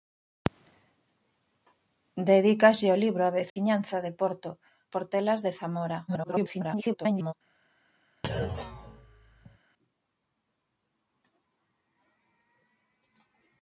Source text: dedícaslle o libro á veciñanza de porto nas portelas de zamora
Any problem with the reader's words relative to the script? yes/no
yes